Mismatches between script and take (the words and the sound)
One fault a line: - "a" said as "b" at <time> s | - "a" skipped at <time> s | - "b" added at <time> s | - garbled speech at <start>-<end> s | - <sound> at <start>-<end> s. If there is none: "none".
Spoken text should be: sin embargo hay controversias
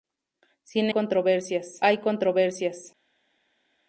- "embargo" said as "controversias" at 0.9 s